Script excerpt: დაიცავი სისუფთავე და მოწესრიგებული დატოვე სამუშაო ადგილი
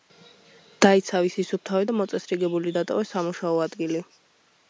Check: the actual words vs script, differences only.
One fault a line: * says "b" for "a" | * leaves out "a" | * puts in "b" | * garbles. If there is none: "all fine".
all fine